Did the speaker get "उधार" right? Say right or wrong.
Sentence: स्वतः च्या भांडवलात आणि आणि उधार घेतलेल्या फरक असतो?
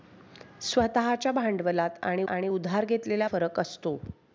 right